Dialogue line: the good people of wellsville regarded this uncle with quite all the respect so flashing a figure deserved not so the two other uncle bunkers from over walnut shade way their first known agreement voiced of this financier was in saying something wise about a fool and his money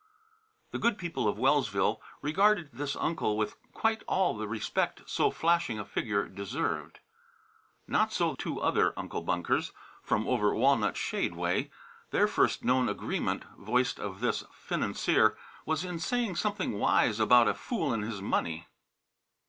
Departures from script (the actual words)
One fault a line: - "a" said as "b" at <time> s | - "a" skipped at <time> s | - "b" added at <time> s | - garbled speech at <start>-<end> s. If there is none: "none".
- "the" skipped at 8.3 s